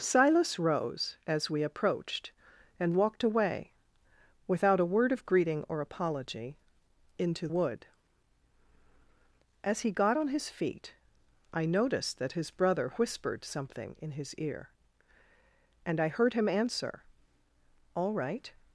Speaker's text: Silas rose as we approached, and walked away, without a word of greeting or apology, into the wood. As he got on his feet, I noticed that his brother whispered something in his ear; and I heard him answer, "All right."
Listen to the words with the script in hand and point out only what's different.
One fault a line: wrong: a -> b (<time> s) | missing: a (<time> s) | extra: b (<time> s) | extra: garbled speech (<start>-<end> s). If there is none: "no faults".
missing: the (7.5 s)